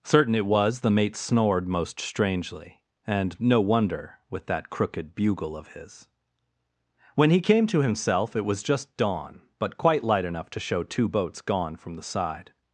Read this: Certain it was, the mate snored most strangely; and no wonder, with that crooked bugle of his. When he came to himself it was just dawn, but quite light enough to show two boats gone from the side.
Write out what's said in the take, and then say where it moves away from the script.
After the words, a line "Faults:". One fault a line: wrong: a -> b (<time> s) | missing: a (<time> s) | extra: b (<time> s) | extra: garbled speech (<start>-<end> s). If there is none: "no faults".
Certain it was, the mate snored most strangely; and no wonder, with that crooked bugle of his. When he came to himself it was just dawn, but quite light enough to show two boats gone from the side.
Faults:
no faults